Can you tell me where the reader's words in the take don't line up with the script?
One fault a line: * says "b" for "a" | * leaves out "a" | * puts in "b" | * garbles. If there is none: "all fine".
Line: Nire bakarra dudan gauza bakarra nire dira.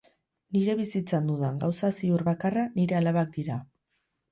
* says "bizitzan" for "bakarra"
* puts in "ziur"
* puts in "alabak"